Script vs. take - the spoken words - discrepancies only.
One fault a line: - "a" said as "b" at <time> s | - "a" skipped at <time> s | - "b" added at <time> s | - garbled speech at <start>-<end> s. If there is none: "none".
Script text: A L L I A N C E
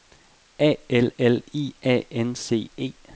none